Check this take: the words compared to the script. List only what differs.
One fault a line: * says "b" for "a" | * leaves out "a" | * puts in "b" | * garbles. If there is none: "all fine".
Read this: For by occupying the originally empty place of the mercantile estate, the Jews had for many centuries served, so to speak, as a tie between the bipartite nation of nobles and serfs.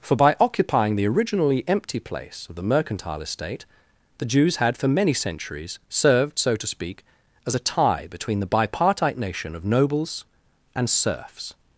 all fine